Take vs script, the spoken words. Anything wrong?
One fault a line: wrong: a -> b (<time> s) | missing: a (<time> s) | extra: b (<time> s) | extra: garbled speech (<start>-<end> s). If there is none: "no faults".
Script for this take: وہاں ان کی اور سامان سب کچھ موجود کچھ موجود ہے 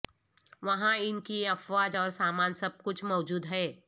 extra: افواج (1.5 s)
missing: کچھ موجود (3.5 s)